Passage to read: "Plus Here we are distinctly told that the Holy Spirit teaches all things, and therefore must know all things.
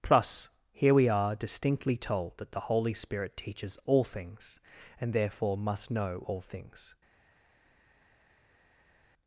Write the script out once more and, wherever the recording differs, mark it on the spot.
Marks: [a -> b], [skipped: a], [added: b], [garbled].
"Plus Here we are distinctly told that the Holy Spirit teaches all things, and therefore must know all things.